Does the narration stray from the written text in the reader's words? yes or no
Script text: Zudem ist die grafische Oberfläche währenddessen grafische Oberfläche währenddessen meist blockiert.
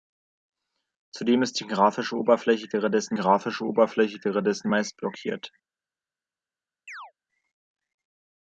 no